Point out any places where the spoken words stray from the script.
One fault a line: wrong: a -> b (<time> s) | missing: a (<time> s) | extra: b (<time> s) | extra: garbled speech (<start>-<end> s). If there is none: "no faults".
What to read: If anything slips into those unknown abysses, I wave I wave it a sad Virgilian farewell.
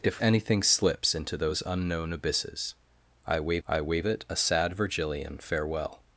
no faults